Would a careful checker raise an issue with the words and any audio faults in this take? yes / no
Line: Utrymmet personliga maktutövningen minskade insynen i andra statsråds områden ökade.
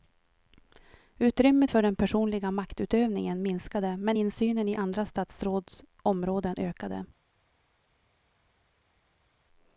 yes